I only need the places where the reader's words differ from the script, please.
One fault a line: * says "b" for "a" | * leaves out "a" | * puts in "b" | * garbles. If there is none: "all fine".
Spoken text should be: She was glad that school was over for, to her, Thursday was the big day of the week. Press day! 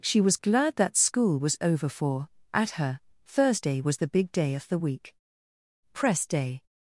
* says "at" for "to"